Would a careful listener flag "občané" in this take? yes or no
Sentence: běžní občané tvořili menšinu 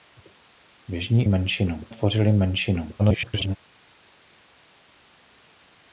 yes